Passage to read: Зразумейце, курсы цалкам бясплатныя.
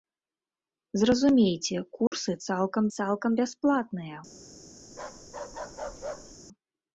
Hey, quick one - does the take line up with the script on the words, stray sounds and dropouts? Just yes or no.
no